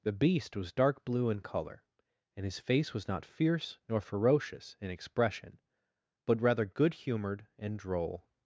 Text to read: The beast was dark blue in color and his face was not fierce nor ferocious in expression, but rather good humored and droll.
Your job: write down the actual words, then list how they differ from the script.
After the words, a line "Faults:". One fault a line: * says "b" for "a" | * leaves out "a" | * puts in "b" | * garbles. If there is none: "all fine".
The beast was dark blue in color and his face was not fierce nor ferocious in expression, but rather good humored and droll.
Faults:
all fine